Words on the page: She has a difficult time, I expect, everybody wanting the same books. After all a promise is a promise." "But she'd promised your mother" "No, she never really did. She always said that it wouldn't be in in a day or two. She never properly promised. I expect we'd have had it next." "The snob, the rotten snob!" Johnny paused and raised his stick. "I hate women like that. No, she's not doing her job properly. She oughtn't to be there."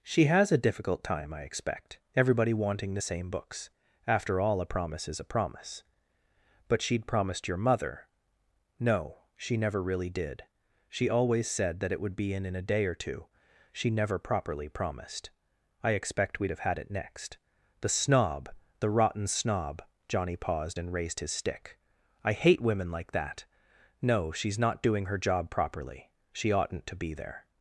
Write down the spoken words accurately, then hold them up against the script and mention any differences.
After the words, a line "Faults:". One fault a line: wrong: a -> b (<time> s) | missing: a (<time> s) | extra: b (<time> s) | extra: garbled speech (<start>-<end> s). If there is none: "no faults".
She has a difficult time, I expect, everybody wanting the same books. After all a promise is a promise." "But she'd promised your mother" "No, she never really did. She always said that it would be in in a day or two. She never properly promised. I expect we'd have had it next." "The snob, the rotten snob!" Johnny paused and raised his stick. "I hate women like that. No, she's not doing her job properly. She oughtn't to be there."
Faults:
wrong: wouldn't -> would (12.0 s)